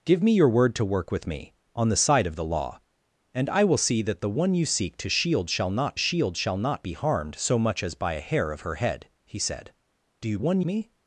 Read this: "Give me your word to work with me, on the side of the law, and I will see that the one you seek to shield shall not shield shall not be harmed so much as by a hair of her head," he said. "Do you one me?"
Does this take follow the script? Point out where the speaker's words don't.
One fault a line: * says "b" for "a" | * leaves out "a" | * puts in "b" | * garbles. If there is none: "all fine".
all fine